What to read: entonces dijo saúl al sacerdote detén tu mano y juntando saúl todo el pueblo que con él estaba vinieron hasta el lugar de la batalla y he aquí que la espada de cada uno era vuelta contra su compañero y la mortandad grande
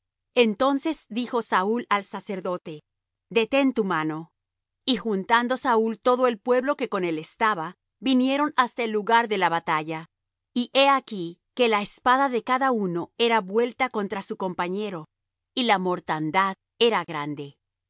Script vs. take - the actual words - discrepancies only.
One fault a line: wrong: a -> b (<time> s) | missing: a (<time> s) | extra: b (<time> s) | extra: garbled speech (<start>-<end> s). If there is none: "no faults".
extra: era (16.8 s)